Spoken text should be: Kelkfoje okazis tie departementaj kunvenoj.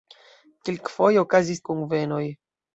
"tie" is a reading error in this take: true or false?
true